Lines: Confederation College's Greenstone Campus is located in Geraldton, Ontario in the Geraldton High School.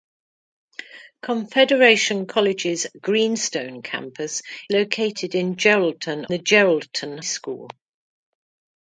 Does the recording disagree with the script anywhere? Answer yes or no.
yes